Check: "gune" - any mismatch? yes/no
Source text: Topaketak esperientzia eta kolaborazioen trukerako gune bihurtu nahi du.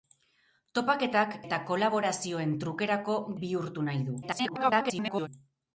yes